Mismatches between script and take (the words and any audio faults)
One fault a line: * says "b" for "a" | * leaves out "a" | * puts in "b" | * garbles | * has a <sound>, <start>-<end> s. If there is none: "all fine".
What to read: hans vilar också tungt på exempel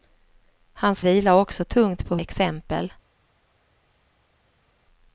all fine